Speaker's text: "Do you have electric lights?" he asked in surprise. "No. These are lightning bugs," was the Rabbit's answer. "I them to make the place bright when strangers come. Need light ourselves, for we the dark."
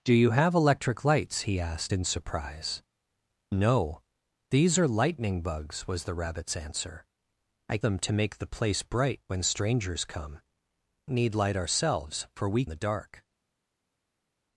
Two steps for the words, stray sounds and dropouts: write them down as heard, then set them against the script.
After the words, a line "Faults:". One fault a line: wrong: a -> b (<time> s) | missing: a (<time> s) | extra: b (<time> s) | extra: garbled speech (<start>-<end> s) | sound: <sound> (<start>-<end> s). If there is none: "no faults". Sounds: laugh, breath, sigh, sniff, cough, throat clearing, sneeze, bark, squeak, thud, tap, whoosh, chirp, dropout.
"Do you have electric lights?" he asked in surprise. "No. These are lightning bugs," was the Rabbit's answer. "I them to make the place bright when strangers come. Need light ourselves, for we the dark."
Faults:
no faults